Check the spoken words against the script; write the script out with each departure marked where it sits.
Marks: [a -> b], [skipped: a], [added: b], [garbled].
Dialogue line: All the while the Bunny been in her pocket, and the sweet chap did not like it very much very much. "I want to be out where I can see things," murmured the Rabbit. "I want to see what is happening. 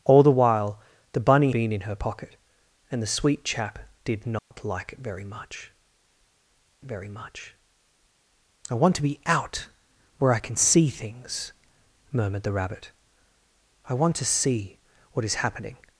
All the while the Bunny been in her pocket, and the sweet chap did not like it very much very much. "I want to be out where I can see things," murmured the Rabbit. "I want to see what is happening.